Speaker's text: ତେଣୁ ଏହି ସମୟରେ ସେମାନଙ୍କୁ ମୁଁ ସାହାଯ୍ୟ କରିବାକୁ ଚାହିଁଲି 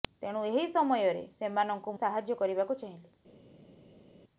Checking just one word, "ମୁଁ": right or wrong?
wrong